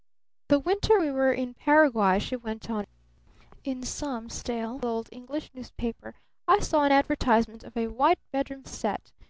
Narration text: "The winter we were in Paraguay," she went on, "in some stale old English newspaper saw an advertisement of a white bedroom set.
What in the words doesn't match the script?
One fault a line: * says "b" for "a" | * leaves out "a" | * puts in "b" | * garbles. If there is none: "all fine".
* puts in "I"